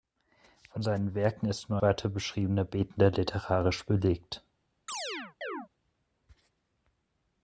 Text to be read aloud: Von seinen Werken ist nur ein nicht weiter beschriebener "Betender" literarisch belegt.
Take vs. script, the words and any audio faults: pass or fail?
fail